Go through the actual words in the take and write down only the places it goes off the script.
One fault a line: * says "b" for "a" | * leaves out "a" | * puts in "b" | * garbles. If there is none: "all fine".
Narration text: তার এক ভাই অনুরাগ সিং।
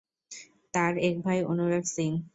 all fine